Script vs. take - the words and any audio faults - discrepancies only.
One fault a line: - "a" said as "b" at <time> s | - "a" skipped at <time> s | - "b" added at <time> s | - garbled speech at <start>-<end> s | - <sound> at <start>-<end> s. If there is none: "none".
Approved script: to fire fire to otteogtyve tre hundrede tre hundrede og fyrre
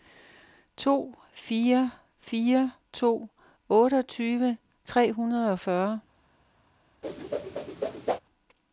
- "tre hundrede" skipped at 5.5 s
- whoosh at 7.0-8.2 s